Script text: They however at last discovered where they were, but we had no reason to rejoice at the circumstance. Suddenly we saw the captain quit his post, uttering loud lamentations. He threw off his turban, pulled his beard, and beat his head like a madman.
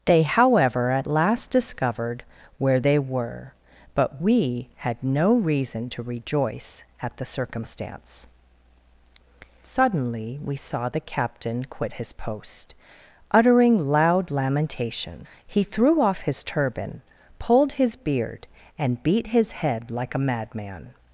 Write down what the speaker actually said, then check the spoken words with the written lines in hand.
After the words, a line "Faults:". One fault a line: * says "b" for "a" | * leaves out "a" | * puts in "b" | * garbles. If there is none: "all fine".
They however at last discovered where they were, but we had no reason to rejoice at the circumstance. Suddenly we saw the captain quit his post, uttering loud lamentation. He threw off his turban, pulled his beard, and beat his head like a madman.
Faults:
* says "lamentation" for "lamentations"